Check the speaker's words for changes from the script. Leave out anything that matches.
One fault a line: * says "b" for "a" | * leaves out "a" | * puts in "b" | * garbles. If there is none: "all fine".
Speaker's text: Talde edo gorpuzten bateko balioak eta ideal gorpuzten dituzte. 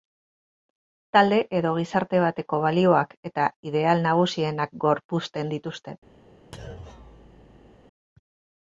* says "gizarte" for "gorpuzten"
* puts in "nagusienak"